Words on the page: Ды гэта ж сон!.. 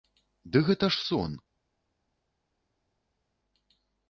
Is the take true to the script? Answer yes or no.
yes